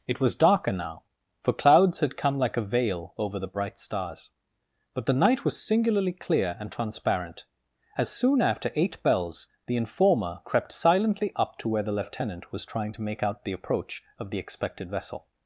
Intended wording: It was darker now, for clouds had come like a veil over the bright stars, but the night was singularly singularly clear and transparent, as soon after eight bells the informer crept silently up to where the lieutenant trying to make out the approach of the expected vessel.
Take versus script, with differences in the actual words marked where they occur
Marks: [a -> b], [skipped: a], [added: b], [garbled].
It was darker now, for clouds had come like a veil over the bright stars, but the night was singularly [skipped: singularly] clear and transparent, as soon after eight bells the informer crept silently up to where the lieutenant [added: was] trying to make out the approach of the expected vessel.